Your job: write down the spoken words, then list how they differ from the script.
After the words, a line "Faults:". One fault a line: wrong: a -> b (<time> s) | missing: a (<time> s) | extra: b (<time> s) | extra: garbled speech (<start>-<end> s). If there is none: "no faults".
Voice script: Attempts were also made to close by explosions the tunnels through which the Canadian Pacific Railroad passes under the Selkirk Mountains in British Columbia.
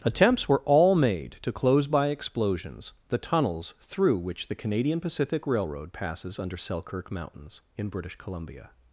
Attempts were all made to close by explosions the tunnels through which the Canadian Pacific Railroad passes under Selkirk Mountains in British Columbia.
Faults:
wrong: also -> all (0.7 s)
missing: the (6.6 s)